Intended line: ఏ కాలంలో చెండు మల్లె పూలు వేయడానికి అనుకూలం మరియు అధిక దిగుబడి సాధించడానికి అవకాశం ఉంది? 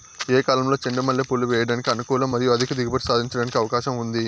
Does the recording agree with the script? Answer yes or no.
yes